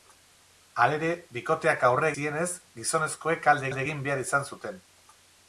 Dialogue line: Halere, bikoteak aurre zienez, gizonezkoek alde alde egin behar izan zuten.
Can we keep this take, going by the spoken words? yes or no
yes